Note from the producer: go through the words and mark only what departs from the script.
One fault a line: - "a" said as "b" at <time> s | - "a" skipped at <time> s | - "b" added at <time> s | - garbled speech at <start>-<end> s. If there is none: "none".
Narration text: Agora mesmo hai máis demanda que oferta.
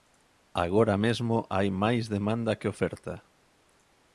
none